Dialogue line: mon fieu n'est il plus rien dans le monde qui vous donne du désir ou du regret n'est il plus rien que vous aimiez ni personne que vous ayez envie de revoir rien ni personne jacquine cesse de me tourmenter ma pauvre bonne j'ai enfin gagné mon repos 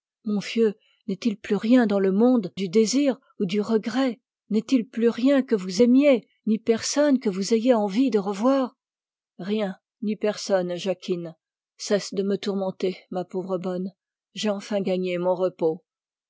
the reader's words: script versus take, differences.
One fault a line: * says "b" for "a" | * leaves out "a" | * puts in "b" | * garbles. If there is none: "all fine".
* leaves out "qui vous donne"